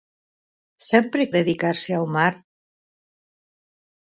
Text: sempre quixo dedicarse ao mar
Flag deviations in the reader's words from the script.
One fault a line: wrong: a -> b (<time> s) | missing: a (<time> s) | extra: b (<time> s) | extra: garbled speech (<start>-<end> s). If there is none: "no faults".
missing: quixo (1.2 s)